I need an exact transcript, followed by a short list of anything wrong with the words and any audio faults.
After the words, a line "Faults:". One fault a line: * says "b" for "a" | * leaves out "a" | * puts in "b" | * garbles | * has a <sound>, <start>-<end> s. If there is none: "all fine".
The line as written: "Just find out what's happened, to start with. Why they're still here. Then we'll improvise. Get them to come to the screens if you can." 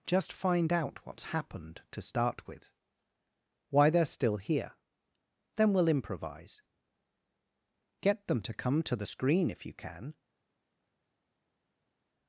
"Just find out what's happened, to start with. Why they're still here. Then we'll improvise. Get them to come to the screen if you can."
Faults:
* says "screen" for "screens"